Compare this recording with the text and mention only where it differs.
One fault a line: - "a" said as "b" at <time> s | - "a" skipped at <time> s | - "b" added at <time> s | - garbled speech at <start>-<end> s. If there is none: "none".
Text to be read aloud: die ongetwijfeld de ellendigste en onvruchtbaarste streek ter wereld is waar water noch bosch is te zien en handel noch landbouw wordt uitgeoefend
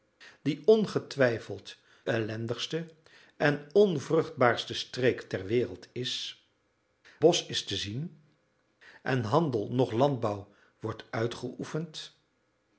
- "de" skipped at 1.8 s
- "waar water noch" skipped at 6.4 s